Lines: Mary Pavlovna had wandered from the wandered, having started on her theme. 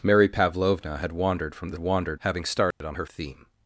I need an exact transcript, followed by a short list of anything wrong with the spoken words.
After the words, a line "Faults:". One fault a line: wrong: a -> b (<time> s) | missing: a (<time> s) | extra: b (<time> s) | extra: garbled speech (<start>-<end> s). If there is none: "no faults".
Mary Pavlovna had wandered from the wandered, having started on her theme.
Faults:
no faults